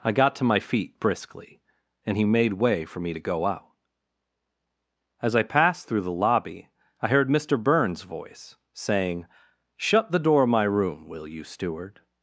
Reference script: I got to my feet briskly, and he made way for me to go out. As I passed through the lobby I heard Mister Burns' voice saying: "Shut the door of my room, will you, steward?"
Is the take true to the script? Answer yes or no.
yes